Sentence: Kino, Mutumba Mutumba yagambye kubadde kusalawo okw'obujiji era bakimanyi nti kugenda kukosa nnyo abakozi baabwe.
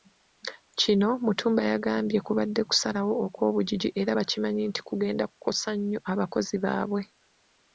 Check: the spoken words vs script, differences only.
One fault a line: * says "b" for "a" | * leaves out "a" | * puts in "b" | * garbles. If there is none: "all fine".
* leaves out "Mutumba"